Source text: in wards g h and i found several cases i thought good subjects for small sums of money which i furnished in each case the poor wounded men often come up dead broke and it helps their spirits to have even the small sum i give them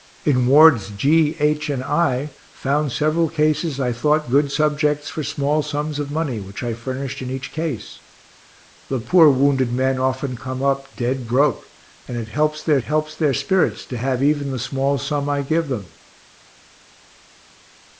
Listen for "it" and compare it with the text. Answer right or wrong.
right